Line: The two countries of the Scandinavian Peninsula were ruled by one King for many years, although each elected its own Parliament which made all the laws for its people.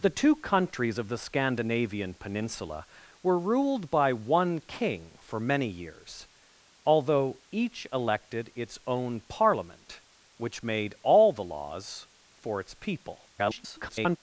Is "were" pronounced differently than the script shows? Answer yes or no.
no